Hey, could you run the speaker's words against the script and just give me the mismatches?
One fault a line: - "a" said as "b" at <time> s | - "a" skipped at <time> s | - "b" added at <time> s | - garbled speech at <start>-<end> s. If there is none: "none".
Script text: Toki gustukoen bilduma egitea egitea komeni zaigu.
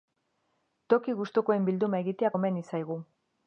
- "egitea" skipped at 2.4 s